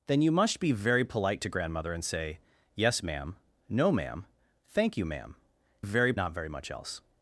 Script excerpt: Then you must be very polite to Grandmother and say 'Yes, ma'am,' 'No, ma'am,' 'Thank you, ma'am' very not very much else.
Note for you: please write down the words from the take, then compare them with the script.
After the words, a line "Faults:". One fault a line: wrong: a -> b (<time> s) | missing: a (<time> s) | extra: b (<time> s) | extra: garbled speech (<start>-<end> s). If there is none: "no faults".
Then you must be very polite to Grandmother and say 'Yes, ma'am,' 'No, ma'am,' 'Thank you, ma'am' very not very much else.
Faults:
no faults